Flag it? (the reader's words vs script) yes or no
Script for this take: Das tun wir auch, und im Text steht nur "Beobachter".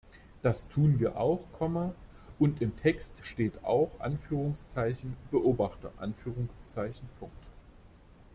yes